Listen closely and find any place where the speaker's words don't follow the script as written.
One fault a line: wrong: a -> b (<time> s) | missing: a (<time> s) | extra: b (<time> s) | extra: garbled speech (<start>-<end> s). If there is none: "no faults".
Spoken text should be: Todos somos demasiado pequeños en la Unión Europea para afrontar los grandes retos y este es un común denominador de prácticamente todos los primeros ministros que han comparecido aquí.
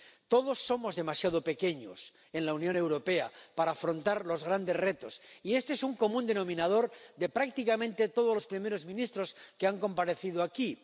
no faults